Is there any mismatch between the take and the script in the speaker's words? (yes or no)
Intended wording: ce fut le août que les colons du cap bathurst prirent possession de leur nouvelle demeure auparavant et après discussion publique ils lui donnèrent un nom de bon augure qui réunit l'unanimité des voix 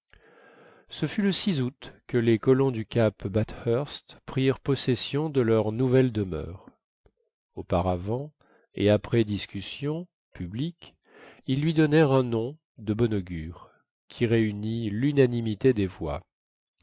no